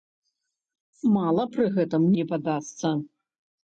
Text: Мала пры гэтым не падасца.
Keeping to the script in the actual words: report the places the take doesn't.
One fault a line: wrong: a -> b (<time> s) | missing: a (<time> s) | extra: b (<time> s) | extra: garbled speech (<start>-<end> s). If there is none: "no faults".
no faults